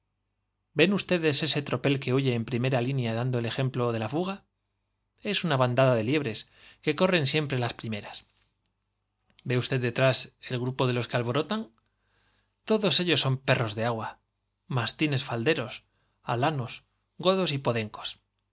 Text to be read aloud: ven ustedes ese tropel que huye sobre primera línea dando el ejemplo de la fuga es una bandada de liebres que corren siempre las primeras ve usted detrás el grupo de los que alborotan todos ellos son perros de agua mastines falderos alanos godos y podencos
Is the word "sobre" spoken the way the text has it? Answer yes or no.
no